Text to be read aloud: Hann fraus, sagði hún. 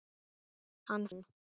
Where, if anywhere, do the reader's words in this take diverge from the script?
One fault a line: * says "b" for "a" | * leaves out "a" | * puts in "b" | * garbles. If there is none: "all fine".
* leaves out "fraus sagði"